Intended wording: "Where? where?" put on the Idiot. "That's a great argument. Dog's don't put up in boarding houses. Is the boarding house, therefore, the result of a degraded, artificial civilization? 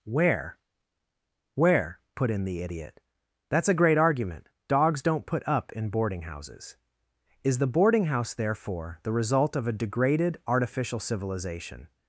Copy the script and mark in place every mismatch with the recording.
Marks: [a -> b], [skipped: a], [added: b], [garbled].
"Where? where?" put [on -> in] the Idiot. "That's a great argument. Dog's don't put up in boarding houses. Is the boarding house, therefore, the result of a degraded, artificial civilization?